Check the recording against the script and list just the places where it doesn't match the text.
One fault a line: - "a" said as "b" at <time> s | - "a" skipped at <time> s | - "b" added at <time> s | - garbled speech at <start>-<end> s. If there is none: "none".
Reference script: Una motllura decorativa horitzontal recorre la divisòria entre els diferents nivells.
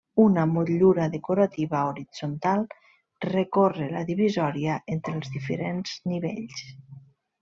none